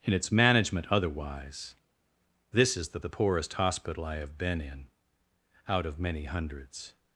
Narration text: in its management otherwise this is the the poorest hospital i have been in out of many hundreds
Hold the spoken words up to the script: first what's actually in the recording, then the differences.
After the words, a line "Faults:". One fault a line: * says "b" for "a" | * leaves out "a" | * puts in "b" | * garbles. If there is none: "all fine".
in its management otherwise this is the the poorest hospital i have been in out of many hundreds
Faults:
all fine